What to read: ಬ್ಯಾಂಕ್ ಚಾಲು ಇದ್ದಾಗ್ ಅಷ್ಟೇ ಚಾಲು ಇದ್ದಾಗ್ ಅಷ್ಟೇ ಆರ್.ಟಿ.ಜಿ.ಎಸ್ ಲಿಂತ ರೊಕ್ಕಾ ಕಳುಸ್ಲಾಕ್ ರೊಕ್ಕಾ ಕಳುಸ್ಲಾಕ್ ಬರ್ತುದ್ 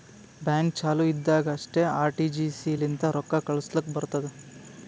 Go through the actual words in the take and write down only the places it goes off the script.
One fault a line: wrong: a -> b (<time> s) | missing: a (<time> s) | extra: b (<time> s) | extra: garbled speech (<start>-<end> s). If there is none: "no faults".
missing: ಚಾಲು ಇದ್ದಾಗ್ ಅಷ್ಟೇ (1.8 s)
missing: ರೊಕ್ಕಾ ಕಳುಸ್ಲಾಕ್ (3.9 s)